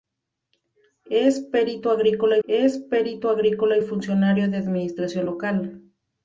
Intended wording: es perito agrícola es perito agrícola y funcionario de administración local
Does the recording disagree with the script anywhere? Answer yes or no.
no